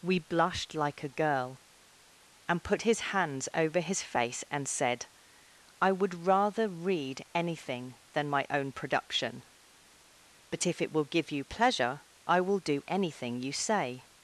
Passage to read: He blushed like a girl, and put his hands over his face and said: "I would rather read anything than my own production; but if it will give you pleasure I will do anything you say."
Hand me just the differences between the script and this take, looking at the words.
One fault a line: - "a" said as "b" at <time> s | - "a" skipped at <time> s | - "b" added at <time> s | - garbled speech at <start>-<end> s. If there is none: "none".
- "He" said as "We" at 0.0 s